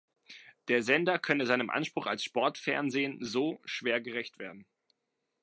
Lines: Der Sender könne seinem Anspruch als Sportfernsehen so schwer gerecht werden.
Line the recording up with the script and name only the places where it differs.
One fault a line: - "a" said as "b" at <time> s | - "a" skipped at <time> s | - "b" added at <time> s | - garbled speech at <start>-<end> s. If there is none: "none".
none